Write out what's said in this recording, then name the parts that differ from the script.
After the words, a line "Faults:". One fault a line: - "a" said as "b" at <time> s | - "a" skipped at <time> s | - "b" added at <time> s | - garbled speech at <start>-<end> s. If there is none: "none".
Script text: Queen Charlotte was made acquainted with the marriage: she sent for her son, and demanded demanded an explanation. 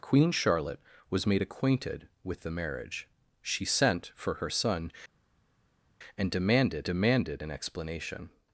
Queen Charlotte was made acquainted with the marriage: she sent for her son, and demanded demanded an explanation.
Faults:
none